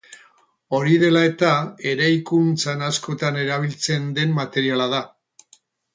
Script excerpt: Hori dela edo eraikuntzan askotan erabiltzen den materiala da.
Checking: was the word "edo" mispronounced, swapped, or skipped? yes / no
yes